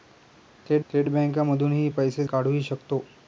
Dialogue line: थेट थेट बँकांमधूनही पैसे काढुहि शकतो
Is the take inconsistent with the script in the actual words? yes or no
no